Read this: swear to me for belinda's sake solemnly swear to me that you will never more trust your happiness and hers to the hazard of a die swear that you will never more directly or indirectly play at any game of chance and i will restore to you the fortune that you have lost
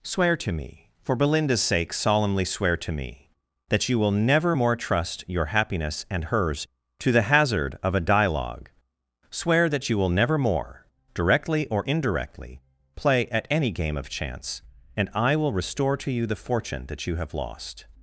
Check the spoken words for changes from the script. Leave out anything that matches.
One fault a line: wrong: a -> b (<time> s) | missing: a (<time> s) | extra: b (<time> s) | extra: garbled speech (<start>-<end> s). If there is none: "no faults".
wrong: die -> dialogue (8.0 s)